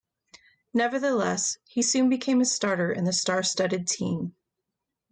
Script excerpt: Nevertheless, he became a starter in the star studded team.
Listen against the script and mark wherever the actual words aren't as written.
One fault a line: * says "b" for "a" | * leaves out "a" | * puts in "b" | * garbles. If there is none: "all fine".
* puts in "soon"